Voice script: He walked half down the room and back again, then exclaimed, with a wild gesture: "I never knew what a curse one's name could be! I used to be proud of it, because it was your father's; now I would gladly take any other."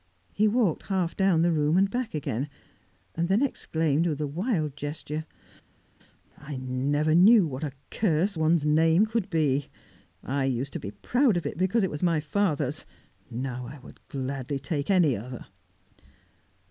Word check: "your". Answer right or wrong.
wrong